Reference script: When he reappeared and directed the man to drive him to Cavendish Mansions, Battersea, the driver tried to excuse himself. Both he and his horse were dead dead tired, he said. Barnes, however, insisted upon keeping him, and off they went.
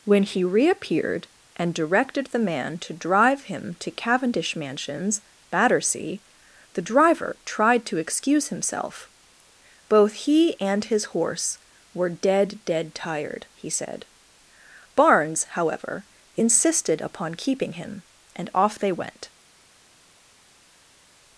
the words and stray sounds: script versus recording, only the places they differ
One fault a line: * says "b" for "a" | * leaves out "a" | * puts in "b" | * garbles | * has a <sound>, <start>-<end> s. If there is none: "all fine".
all fine